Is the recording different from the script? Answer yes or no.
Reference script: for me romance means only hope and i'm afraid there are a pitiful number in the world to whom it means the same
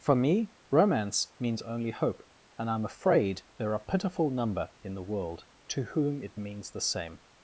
no